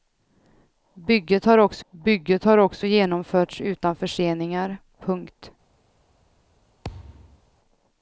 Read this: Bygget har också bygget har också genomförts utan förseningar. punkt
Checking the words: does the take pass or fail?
pass